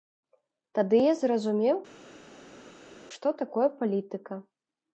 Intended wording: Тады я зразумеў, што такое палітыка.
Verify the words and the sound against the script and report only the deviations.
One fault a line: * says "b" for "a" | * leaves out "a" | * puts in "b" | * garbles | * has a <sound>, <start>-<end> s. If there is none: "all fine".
all fine